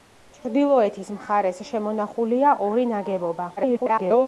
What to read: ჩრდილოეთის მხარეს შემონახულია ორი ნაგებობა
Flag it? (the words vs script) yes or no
yes